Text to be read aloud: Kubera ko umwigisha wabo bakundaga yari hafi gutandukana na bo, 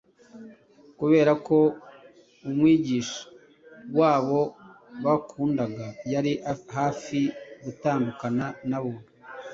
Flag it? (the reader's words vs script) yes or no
no